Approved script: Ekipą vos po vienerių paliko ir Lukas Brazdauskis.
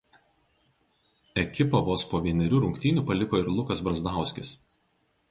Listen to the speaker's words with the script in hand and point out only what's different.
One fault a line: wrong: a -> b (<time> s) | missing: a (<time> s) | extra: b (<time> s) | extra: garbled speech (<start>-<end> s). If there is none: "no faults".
extra: rungtynių (2.6 s)